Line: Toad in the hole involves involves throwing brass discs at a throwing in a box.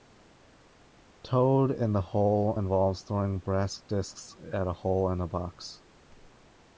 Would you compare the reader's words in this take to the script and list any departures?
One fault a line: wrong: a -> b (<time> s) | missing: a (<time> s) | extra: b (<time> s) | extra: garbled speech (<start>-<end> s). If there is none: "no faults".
missing: involves (3.0 s)
wrong: throwing -> hole (4.7 s)